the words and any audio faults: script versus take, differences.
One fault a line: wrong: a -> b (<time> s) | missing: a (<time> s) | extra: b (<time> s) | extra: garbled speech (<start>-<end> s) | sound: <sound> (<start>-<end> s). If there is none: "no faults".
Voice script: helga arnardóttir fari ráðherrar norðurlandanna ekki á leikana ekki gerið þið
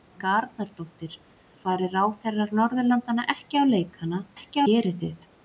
no faults